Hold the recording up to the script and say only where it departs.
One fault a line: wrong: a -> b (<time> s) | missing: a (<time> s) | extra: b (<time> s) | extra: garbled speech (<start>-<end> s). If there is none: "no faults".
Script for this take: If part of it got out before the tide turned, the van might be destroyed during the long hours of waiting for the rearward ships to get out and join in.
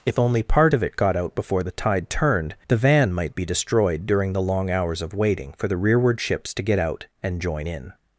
extra: only (0.2 s)